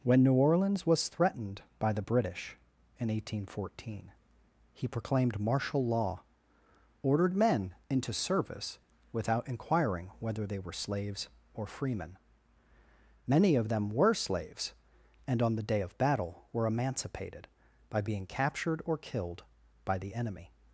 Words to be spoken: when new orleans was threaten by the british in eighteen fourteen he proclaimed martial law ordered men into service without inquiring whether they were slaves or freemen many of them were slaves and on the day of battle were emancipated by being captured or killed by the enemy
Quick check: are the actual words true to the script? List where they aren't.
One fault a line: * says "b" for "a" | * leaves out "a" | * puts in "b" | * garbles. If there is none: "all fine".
* says "threatened" for "threaten"